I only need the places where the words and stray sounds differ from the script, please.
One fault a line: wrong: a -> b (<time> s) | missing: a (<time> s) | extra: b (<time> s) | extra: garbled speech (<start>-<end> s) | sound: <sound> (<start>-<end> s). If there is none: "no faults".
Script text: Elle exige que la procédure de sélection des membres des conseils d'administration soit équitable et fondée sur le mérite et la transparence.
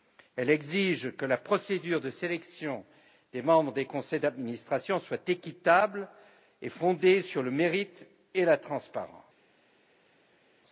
no faults